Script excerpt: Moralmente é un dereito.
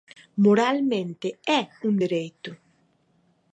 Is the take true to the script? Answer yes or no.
yes